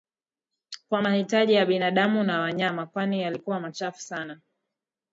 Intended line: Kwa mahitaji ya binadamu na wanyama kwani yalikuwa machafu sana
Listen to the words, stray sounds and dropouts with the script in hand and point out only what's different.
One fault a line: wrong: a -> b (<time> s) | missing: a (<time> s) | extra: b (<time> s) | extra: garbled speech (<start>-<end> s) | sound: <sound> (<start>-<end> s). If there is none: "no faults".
no faults